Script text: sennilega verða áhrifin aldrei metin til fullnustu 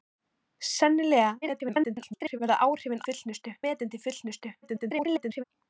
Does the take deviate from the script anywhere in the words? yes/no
yes